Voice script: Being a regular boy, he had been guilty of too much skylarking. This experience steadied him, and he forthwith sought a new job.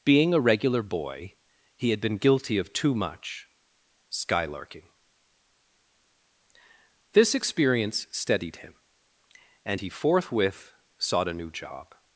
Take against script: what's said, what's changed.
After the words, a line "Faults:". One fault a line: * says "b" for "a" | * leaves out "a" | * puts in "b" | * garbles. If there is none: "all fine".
Being a regular boy, he had been guilty of too much skylarking. This experience steadied him, and he forthwith sought a new job.
Faults:
all fine